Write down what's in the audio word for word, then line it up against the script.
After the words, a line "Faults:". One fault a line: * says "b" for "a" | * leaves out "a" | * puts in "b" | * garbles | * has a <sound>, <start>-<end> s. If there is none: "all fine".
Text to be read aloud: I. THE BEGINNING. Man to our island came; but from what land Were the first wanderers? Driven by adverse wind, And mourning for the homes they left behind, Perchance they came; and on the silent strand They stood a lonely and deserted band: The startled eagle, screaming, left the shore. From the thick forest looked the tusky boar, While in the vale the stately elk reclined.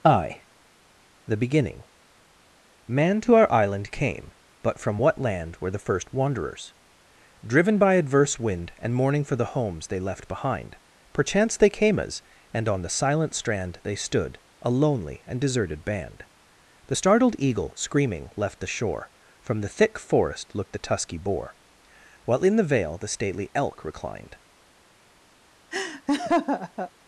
I. THE BEGINNING. Man to our island came; but from what land Were the first wanderers? Driven by adverse wind, And mourning for the homes they left behind, Perchance they came; as and on the silent strand They stood a lonely and deserted band: The startled eagle, screaming, left the shore. From the thick forest looked the tusky boar, While in the vale the stately elk reclined.
Faults:
* puts in "as"
* has a laugh, 25.7-26.9 s